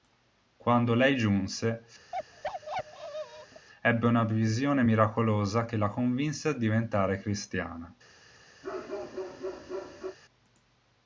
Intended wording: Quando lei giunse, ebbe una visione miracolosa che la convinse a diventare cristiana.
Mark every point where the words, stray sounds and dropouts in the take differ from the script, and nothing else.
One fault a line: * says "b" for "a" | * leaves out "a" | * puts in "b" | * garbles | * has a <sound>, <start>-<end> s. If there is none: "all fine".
* has a bark, 2.1-3.7 s
* has a bark, 8.6-10.2 s